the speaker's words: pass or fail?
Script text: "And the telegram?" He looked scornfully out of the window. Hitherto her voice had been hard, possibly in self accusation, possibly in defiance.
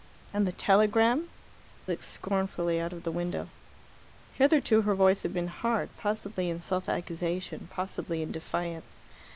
fail